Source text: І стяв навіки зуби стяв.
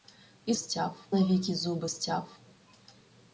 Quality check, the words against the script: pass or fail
pass